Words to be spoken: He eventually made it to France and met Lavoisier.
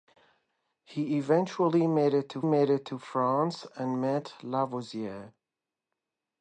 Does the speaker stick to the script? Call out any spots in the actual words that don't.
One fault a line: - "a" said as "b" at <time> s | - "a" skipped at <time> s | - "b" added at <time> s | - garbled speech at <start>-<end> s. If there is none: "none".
- "made it to" added at 2.4 s